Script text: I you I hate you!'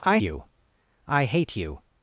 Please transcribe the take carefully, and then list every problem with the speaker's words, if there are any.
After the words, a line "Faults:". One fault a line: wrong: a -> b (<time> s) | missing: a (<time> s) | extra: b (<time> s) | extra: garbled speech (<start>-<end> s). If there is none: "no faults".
I you I hate you!'
Faults:
no faults